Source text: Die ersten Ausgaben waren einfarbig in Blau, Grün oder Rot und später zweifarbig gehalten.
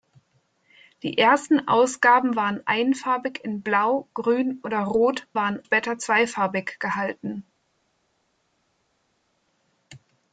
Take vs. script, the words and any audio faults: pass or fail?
fail